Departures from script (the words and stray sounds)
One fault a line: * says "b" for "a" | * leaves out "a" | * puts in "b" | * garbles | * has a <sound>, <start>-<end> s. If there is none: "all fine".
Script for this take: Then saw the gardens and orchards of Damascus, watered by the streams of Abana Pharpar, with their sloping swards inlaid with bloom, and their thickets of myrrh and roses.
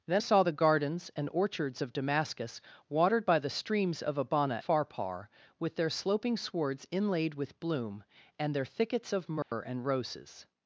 * has a dropout, 9.4-9.5 s